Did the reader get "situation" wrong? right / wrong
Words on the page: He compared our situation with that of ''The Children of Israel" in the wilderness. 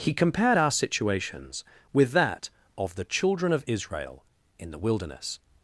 wrong